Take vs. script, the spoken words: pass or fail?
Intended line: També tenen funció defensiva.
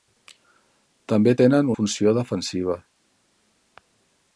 pass